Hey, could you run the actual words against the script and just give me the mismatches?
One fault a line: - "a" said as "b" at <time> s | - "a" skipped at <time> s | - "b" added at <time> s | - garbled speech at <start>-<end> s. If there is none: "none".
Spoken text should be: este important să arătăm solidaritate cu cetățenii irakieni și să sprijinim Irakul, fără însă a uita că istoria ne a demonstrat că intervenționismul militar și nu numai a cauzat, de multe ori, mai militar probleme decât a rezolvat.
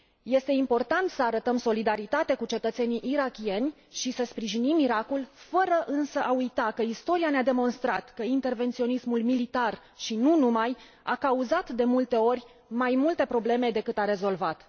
- "militar" said as "multe" at 12.9 s